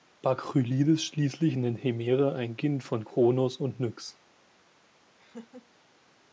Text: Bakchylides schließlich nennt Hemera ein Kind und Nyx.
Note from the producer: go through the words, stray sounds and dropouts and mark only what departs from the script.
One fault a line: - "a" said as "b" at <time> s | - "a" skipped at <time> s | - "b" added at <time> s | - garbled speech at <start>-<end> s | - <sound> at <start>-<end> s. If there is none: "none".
- "von Kronos" added at 2.8 s
- laugh at 5.2-5.7 s